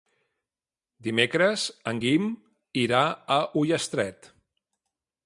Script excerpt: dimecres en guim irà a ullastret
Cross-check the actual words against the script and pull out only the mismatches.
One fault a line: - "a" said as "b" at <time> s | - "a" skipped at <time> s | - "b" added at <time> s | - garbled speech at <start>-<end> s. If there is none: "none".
none